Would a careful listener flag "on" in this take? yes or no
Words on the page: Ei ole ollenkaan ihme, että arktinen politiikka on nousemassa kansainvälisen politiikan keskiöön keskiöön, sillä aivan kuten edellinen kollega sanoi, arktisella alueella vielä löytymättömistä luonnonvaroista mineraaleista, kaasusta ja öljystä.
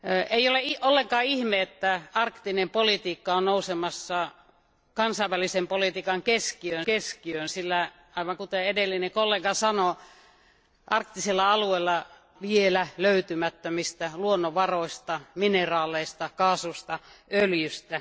no